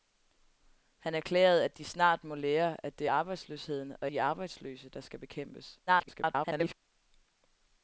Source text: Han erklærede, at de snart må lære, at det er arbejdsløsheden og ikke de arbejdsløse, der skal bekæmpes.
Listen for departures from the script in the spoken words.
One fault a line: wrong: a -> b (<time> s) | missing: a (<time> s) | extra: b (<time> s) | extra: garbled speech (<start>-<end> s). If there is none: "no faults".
missing: ikke (4.1 s)
extra: garbled speech (5.9-6.7 s)